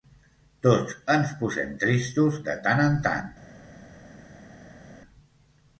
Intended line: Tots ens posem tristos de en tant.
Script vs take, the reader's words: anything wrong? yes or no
yes